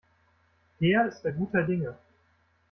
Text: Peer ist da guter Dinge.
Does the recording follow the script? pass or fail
pass